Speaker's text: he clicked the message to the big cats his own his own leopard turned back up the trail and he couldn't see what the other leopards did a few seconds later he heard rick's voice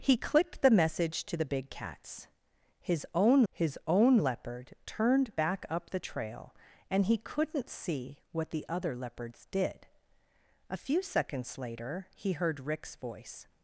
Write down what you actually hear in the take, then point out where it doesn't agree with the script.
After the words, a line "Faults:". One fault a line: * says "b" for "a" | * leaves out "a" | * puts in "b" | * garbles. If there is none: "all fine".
he clicked the message to the big cats his own his own leopard turned back up the trail and he couldn't see what the other leopards did a few seconds later he heard rick's voice
Faults:
all fine